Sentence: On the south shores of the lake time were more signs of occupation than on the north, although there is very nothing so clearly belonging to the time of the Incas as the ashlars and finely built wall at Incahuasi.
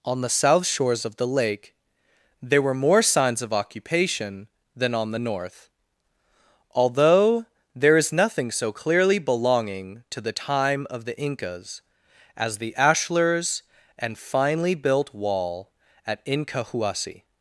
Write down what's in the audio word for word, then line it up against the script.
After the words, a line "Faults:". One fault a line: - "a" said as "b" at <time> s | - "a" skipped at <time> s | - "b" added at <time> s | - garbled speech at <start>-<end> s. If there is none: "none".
On the south shores of the lake there were more signs of occupation than on the north, although there is nothing so clearly belonging to the time of the Incas as the ashlars and finely built wall at Incahuasi.
Faults:
- "time" said as "there" at 2.4 s
- "very" skipped at 8.1 s